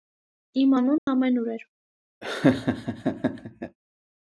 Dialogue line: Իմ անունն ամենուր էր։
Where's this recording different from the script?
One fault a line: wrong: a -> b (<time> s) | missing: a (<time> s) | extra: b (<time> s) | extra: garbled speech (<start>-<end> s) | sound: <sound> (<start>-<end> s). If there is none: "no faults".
sound: dropout (1.0-1.1 s)
sound: laugh (2.2-3.8 s)